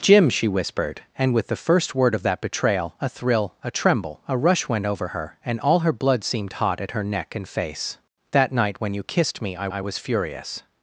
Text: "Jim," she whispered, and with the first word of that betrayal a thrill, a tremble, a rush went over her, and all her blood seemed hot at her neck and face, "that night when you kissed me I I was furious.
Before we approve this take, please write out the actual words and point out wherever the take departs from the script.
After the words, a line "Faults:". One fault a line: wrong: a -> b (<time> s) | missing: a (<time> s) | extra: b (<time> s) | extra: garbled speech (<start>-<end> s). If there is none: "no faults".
"Jim," she whispered, and with the first word of that betrayal a thrill, a tremble, a rush went over her, and all her blood seemed hot at her neck and face, "that night when you kissed me I I was furious.
Faults:
no faults